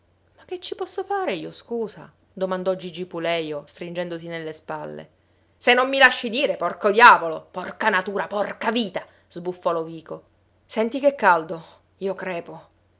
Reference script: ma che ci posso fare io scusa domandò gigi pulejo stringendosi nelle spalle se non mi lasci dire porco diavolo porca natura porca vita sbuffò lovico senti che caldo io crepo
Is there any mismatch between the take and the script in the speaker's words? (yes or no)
no